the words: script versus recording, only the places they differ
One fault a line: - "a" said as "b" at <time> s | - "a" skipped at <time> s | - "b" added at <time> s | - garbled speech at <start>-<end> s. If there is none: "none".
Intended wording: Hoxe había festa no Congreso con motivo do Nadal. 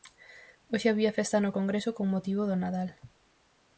none